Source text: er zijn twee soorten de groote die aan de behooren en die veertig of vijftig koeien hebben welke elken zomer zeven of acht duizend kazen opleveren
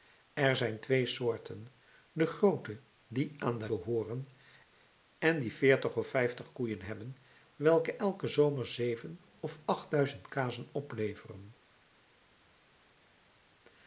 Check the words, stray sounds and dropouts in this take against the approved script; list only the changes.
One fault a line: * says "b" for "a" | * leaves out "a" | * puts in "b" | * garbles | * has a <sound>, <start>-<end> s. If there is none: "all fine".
all fine